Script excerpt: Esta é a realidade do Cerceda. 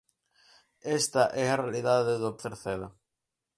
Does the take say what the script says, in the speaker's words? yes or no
yes